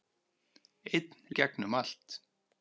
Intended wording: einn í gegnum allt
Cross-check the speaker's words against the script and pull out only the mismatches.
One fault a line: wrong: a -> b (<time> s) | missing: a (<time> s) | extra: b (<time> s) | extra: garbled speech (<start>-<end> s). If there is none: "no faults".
no faults